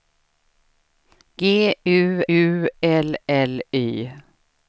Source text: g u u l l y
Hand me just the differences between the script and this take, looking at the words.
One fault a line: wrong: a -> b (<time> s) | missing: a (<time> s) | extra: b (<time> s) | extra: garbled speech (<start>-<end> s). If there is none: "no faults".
no faults